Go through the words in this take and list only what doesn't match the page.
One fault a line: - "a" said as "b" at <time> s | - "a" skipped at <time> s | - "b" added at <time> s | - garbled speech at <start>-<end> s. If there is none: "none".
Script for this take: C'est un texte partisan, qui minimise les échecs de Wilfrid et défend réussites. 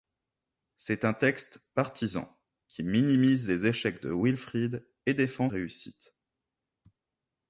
none